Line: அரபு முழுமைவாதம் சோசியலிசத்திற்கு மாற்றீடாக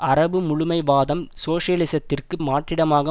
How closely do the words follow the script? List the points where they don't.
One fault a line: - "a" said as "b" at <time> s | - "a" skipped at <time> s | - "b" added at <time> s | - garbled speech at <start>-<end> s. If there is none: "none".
none